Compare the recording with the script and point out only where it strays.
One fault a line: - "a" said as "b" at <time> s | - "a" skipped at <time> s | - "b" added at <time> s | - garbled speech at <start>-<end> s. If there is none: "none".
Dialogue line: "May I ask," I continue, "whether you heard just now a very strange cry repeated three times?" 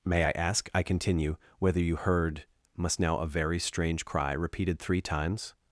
- "just" said as "must" at 2.8 s